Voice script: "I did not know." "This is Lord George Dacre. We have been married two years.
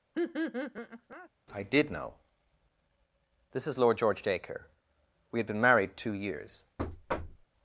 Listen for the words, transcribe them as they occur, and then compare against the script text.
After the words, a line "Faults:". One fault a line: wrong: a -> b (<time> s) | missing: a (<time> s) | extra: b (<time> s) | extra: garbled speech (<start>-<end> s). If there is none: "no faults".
"I did know." "This is Lord George Dacre. We had been married two years.
Faults:
missing: not (1.9 s)
wrong: have -> had (5.4 s)